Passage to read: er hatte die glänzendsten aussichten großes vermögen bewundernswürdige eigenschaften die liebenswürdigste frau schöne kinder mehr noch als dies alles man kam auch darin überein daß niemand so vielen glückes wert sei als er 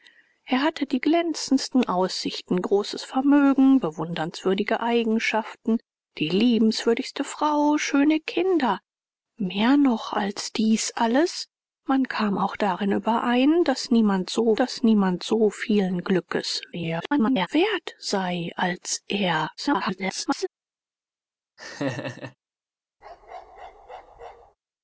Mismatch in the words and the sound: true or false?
true